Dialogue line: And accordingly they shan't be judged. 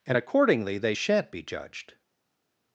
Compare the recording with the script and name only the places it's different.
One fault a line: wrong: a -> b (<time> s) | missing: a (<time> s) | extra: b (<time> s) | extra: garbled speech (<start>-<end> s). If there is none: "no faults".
no faults